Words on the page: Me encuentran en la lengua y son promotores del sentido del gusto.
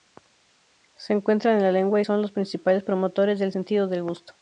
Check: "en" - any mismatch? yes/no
no